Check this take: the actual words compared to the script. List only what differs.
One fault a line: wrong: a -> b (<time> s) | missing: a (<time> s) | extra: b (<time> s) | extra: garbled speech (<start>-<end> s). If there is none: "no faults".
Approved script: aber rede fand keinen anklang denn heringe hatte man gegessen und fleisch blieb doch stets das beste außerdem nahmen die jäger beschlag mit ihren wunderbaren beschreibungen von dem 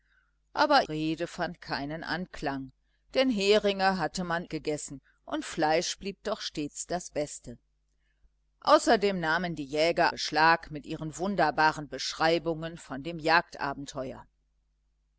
no faults